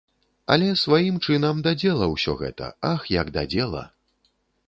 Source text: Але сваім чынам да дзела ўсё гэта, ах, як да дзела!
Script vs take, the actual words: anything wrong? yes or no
no